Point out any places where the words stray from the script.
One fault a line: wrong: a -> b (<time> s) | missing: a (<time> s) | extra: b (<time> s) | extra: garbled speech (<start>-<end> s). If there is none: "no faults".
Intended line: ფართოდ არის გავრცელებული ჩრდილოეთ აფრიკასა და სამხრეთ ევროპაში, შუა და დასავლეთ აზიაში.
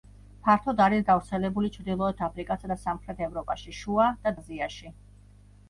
missing: დასავლეთ (4.3 s)